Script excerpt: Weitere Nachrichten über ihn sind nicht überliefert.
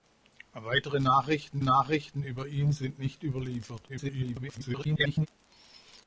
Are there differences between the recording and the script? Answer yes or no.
yes